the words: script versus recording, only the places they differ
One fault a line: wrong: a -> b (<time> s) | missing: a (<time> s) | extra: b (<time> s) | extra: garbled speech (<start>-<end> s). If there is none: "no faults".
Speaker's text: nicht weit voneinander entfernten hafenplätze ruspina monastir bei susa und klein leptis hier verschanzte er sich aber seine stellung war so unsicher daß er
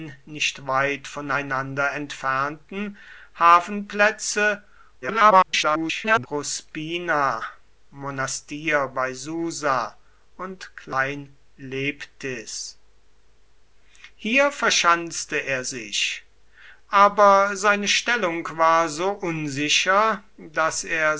extra: garbled speech (5.0-6.3 s)